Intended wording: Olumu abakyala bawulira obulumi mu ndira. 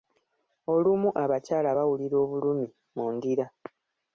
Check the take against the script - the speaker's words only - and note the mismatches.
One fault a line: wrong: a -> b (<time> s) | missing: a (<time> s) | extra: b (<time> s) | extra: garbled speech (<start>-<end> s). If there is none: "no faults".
no faults